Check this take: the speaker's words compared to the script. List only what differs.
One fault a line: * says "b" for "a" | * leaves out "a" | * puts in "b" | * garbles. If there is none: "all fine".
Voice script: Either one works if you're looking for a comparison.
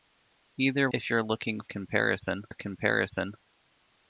* leaves out "one works"
* says "comparison" for "for"